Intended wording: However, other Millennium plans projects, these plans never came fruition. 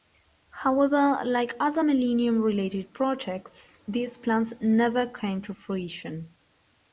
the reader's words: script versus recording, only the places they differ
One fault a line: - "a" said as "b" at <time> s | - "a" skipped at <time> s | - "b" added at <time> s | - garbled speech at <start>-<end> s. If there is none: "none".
- "like" added at 1.2 s
- "plans" said as "related" at 2.4 s
- "to" added at 5.4 s